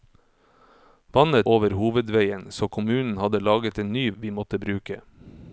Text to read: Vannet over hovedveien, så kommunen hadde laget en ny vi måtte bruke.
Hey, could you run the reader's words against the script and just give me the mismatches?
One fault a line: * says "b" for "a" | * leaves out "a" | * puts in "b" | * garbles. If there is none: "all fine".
all fine